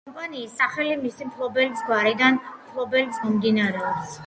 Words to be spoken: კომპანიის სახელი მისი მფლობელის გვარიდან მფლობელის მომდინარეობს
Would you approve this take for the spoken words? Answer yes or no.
yes